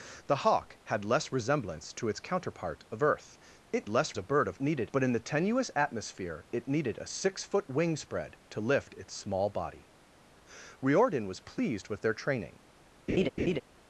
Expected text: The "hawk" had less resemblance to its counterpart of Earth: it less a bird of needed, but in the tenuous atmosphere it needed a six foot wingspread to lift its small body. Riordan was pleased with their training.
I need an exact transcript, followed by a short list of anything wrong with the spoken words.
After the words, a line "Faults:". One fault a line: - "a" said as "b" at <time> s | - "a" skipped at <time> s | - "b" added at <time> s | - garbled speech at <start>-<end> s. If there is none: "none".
The "hawk" had less resemblance to its counterpart of Earth: it less a bird of needed, but in the tenuous atmosphere it needed a six foot wingspread to lift its small body. Riordan was pleased with their training.
Faults:
none